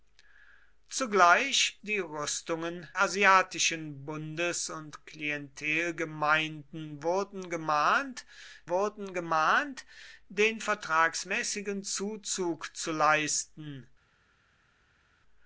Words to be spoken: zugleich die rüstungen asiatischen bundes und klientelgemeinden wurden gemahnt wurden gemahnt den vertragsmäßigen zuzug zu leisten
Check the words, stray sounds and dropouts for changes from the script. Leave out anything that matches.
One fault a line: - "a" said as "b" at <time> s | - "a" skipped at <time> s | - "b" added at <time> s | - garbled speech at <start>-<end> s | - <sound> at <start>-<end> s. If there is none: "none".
none